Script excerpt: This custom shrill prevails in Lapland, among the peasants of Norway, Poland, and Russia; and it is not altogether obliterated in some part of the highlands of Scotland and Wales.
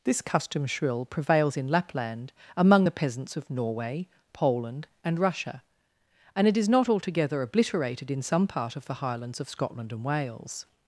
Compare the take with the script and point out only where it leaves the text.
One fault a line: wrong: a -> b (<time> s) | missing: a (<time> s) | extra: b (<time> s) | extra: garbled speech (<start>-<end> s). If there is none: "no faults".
no faults